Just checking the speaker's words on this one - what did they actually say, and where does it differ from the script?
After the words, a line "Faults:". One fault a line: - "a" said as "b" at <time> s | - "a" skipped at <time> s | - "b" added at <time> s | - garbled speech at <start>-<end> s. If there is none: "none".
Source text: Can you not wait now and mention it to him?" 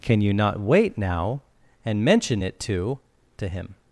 Can you not wait now and mention it to to him?"
Faults:
- "to" added at 3.4 s